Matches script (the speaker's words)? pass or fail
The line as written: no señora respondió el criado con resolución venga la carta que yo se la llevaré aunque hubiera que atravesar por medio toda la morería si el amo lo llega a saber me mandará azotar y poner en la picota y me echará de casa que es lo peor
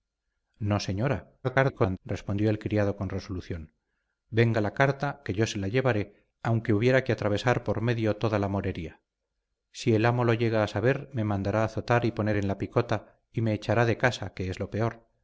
fail